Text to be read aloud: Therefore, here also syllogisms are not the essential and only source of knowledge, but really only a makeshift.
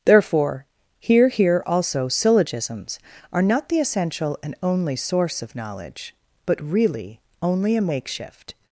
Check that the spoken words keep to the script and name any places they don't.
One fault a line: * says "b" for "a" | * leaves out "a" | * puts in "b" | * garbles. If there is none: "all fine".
* puts in "here"